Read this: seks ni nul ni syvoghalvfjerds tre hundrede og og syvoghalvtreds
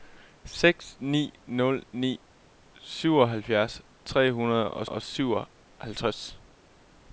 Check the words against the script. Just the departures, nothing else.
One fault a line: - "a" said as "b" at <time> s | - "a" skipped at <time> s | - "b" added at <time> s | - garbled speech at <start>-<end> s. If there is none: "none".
none